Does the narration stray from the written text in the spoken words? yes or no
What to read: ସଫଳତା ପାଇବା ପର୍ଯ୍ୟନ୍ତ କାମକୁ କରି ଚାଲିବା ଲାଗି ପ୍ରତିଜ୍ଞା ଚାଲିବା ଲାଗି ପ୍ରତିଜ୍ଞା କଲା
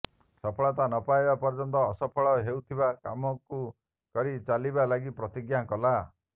yes